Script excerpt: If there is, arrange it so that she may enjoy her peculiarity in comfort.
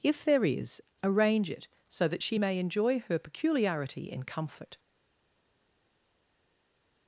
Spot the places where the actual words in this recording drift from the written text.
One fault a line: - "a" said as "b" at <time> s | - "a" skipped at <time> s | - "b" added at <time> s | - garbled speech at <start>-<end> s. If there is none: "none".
none